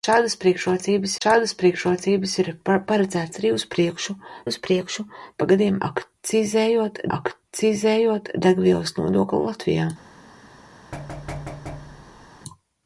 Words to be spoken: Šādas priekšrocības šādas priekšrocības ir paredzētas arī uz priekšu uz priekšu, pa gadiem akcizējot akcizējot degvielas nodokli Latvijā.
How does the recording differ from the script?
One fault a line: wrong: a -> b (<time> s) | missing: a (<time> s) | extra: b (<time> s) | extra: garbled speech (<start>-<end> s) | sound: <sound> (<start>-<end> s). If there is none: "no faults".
sound: thud (10.9-12.3 s)